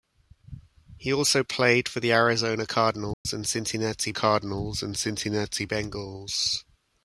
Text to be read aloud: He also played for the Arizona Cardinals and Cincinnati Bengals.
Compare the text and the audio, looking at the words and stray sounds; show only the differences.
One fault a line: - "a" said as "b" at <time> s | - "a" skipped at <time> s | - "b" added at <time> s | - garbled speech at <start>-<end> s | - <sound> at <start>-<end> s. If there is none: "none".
- dropout at 3.1-3.2 s
- "Cardinals and Cincinnati" added at 4.1 s